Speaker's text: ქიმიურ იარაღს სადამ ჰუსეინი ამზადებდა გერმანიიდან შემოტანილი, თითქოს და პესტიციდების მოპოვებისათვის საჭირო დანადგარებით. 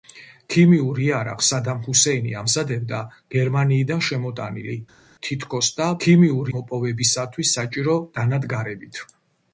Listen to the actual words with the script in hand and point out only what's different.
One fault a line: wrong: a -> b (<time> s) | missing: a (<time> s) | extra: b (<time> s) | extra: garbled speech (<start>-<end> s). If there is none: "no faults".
wrong: პესტიციდების -> ქიმიურ (6.0 s)